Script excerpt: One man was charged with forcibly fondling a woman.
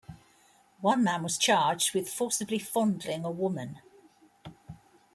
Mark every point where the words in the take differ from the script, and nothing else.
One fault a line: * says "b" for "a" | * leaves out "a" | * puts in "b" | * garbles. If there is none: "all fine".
all fine